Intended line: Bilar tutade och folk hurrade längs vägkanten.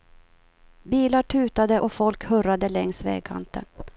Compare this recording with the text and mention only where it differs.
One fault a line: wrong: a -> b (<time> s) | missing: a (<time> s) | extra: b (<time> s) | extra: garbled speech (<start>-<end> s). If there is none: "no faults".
no faults